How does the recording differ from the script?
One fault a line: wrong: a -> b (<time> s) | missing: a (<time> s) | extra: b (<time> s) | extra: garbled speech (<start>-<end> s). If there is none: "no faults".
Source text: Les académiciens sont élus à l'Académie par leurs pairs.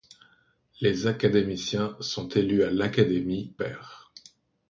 missing: par leurs (3.5 s)